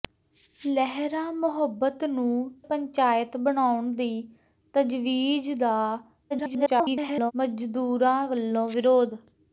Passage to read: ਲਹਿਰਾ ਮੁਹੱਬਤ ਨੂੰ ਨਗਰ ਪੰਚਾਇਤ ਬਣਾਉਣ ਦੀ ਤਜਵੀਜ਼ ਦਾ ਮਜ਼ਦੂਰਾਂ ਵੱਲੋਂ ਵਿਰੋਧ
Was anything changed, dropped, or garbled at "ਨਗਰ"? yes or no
yes